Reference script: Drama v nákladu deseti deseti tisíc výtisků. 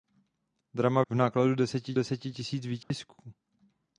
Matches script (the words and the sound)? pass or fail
fail